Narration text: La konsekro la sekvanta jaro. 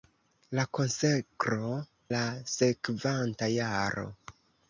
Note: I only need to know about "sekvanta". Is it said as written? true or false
true